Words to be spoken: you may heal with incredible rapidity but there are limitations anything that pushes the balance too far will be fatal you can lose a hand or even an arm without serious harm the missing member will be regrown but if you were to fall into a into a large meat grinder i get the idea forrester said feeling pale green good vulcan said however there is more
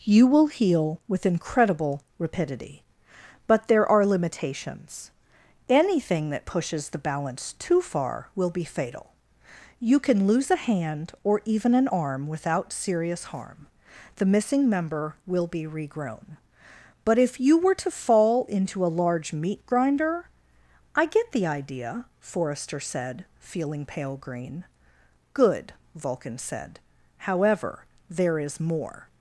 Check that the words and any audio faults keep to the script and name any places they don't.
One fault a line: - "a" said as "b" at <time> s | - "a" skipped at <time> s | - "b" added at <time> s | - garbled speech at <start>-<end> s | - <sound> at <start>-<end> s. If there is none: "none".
- "may" said as "will" at 0.2 s
- "into a" skipped at 19.0 s